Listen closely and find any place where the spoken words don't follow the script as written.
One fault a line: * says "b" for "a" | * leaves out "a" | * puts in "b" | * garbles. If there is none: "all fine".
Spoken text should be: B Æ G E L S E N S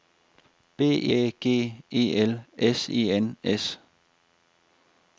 all fine